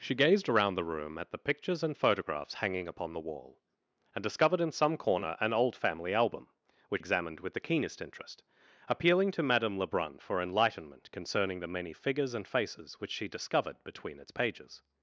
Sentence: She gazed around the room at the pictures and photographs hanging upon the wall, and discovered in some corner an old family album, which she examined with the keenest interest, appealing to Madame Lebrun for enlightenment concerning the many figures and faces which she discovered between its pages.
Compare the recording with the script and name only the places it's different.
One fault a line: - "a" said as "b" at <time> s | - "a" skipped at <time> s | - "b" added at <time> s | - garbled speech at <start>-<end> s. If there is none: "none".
- "she" skipped at 7.0 s